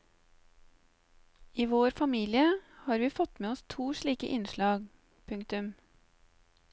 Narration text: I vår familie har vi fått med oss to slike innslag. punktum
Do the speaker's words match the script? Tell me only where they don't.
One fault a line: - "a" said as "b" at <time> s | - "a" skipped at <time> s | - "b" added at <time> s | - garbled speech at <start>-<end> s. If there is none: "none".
none